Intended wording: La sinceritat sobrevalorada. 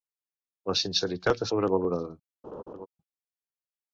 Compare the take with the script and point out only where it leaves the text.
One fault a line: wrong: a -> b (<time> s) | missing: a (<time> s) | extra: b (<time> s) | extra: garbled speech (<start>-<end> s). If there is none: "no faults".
no faults